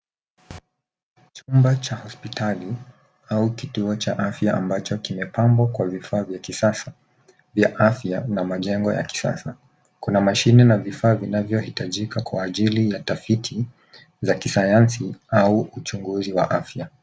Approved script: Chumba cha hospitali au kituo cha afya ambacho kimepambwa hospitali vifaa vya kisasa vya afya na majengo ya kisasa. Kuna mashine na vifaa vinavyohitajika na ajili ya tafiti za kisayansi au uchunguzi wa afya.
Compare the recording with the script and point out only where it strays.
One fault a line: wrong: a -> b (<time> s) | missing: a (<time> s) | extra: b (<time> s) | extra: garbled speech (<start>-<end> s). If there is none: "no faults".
wrong: hospitali -> kwa (5.7 s)
wrong: na -> kwa (12.2 s)